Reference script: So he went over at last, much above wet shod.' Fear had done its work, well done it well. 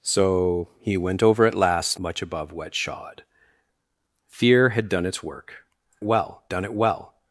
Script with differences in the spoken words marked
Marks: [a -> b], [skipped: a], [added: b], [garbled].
So he went over at last, much above wet shod.' Fear had done its work, well done it well.